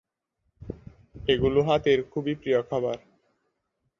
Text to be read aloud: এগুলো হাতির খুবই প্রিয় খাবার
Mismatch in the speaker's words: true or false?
false